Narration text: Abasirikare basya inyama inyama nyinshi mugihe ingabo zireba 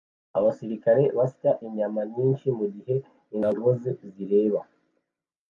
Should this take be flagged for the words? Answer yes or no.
yes